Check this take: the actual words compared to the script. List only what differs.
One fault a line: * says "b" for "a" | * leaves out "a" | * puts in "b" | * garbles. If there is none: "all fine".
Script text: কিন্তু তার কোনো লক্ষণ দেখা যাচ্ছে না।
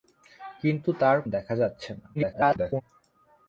* leaves out "কোনো লক্ষণ"
* garbles